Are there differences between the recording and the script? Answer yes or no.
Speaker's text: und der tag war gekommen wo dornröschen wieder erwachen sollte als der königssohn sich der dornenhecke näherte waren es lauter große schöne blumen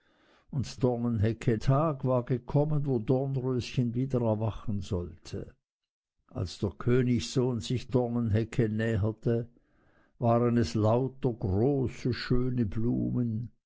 yes